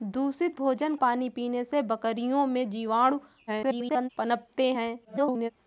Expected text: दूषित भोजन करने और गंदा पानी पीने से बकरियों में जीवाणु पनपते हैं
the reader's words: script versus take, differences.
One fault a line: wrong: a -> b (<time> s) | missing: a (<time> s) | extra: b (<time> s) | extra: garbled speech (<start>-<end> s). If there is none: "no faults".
missing: करने और गंदा (0.9 s)
extra: garbled speech (3.5-4.1 s)
extra: garbled speech (5.0-5.5 s)